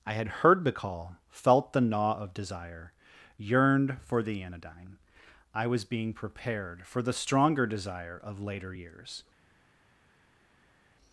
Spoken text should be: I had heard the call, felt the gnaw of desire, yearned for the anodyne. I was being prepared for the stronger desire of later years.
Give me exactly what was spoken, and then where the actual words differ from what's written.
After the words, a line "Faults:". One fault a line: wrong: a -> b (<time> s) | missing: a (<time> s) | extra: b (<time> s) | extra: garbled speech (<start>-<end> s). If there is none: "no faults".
I had heard the call, felt the gnaw of desire, yearned for the anodyne. I was being prepared for the stronger desire of later years.
Faults:
no faults